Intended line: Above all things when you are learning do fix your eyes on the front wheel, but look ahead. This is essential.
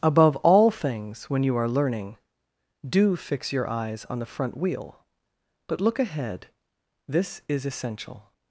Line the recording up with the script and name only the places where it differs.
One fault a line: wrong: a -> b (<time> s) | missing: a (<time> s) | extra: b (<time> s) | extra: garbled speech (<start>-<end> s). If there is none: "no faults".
no faults